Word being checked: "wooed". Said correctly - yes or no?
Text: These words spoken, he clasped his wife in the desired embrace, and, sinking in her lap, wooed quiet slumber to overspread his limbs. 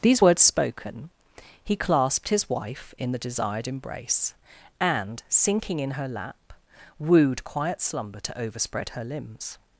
yes